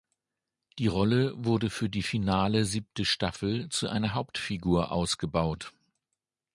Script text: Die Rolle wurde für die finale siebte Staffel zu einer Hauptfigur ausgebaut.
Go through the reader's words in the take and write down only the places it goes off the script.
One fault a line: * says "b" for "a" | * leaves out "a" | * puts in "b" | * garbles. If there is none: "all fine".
all fine